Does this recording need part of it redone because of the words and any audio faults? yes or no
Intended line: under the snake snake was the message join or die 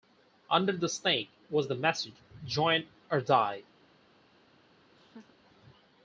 yes